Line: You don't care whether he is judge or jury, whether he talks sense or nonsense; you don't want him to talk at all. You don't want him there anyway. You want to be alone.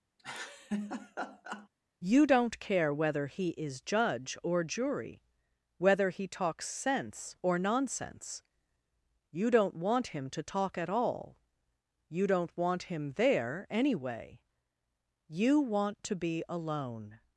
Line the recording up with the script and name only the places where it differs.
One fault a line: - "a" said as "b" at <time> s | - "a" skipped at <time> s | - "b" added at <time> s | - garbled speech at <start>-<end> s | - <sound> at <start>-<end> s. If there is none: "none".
- laugh at 0.2-1.7 s